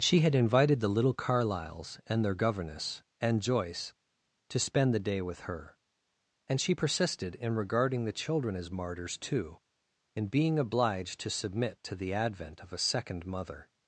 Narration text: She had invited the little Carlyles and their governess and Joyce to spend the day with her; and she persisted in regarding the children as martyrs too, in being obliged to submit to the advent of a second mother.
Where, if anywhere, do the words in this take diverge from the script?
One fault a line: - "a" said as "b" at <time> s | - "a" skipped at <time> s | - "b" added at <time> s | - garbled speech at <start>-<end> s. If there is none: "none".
none